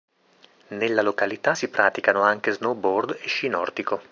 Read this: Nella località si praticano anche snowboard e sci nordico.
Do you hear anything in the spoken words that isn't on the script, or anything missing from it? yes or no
no